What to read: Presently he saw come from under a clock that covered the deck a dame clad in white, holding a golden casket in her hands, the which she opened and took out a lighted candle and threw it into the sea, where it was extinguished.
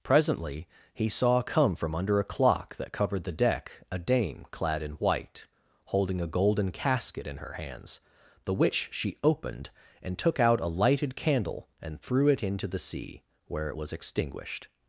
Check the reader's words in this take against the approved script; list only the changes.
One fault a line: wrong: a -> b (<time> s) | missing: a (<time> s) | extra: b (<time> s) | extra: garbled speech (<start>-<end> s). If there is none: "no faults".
no faults